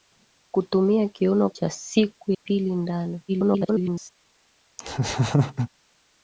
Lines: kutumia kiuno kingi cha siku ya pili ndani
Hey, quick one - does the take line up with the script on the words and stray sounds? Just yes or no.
no